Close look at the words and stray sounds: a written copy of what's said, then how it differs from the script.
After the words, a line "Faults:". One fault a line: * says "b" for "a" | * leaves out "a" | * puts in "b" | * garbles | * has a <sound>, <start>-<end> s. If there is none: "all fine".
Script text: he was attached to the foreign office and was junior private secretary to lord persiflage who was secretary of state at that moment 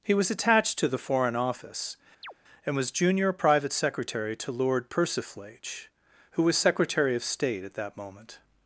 he was attached to the foreign office and was junior private secretary to lord persiflage who was secretary of state at that moment
Faults:
* has a chirp, 2.2-2.3 s